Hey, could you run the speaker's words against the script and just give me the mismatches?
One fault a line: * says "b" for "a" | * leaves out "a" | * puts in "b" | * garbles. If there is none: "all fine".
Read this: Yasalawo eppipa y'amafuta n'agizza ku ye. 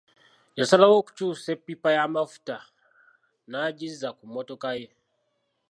* puts in "okukyusa"
* puts in "mmotoka"